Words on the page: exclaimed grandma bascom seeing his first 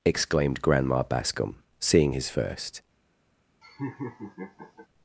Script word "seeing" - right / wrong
right